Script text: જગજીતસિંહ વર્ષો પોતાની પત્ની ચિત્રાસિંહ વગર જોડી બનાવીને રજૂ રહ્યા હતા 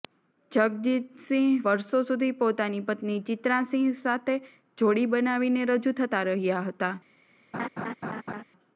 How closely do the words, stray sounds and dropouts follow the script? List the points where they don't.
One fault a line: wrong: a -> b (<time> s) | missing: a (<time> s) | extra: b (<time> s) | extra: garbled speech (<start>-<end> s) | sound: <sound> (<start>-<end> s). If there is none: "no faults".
extra: સુધી (2.0 s)
wrong: વગર -> સાથે (4.0 s)
extra: થતા (6.0 s)
sound: laugh (7.5-8.4 s)